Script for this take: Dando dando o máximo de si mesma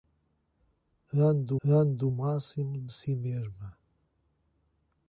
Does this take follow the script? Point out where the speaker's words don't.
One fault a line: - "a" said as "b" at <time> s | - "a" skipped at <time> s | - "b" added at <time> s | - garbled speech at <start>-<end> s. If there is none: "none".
none